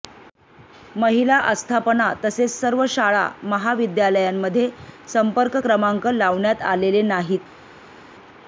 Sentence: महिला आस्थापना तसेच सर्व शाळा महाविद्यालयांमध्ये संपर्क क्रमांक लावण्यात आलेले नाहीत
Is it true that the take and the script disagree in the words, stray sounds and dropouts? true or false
false